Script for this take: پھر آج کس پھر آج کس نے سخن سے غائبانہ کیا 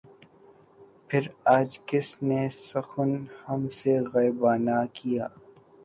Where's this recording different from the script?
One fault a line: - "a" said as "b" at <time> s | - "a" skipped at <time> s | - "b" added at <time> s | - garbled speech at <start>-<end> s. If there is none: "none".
- "پھر آج کس" skipped at 2.1 s
- "ہم" added at 3.5 s